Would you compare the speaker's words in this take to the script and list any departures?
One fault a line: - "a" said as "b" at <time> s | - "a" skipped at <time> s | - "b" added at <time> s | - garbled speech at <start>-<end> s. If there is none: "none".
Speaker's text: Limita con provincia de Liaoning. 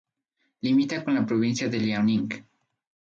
- "la" added at 1.1 s